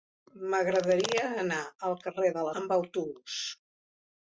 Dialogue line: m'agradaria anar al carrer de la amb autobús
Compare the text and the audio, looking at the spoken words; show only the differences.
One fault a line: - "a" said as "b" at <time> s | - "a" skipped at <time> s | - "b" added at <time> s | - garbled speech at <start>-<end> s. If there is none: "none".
none